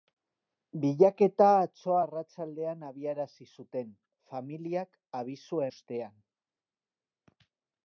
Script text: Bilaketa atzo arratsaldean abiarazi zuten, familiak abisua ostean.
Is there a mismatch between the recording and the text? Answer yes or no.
no